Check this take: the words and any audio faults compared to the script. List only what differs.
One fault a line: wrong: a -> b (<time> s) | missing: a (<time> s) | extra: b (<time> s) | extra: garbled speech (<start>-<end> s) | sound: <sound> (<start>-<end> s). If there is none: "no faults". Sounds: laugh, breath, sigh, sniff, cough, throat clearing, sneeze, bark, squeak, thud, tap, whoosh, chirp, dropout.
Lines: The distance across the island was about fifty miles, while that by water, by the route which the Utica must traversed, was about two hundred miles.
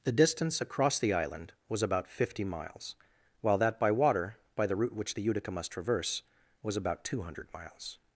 wrong: traversed -> traverse (5.7 s)